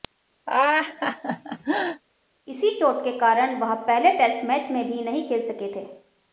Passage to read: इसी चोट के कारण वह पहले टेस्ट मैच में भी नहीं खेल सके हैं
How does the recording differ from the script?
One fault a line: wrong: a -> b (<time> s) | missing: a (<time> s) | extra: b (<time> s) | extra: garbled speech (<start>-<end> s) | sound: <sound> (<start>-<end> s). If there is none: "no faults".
sound: laugh (0.5-2.0 s)
wrong: हैं -> थे (5.7 s)